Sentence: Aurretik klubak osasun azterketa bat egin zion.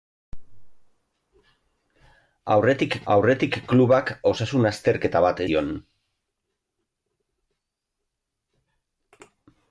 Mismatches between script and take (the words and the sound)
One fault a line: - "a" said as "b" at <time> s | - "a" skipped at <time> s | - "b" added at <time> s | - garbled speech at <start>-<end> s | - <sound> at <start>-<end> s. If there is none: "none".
- "aurretik" added at 3.1 s
- "egin" skipped at 5.4 s